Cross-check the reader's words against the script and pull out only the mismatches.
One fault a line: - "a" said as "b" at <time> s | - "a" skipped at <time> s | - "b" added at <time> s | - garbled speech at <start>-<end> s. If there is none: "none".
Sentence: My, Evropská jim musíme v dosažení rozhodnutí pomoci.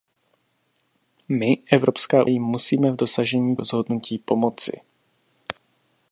none